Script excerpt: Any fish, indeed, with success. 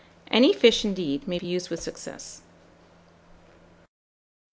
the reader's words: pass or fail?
fail